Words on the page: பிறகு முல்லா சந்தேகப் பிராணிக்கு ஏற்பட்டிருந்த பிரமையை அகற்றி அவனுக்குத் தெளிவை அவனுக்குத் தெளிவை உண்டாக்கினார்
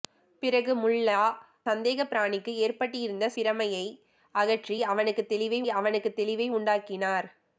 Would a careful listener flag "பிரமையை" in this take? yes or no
no